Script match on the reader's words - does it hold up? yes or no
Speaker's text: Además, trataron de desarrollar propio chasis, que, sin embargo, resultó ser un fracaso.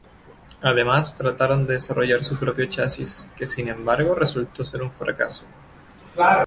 no